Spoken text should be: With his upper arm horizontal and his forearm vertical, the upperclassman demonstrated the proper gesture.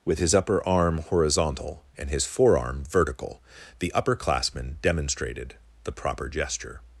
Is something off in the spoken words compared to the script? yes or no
no